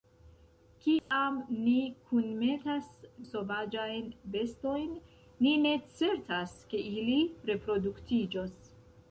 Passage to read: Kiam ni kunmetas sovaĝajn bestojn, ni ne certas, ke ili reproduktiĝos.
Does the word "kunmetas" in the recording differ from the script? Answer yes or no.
no